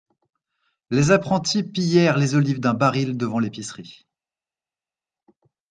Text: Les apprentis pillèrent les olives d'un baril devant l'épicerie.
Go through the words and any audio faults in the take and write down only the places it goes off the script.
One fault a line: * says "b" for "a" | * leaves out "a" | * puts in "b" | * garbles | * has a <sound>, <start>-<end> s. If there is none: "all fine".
all fine